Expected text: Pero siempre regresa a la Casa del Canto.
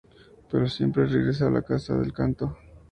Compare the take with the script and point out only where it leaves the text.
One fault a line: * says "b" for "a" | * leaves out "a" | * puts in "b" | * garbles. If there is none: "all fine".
all fine